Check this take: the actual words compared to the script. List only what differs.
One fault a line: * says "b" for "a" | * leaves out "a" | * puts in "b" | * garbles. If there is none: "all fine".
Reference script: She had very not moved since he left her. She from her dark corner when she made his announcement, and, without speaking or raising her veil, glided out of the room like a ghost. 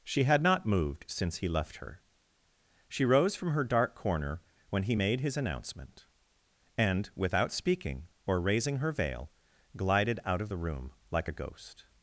* leaves out "very"
* puts in "rose"
* says "he" for "she"